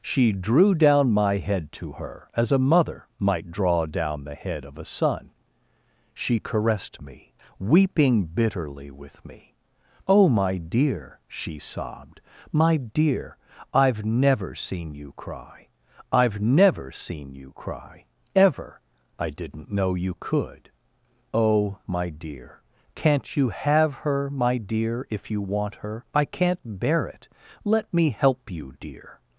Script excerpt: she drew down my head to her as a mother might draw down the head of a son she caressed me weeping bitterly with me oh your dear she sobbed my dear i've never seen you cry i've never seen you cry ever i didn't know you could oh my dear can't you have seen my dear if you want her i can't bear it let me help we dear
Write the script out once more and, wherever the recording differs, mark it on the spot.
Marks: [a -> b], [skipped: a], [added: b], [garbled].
she drew down my head to her as a mother might draw down the head of a son she caressed me weeping bitterly with me oh [your -> my] dear she sobbed my dear i've never seen you cry i've never seen you cry ever i didn't know you could oh my dear can't you have [seen -> her] my dear if you want her i can't bear it let me help [we -> you] dear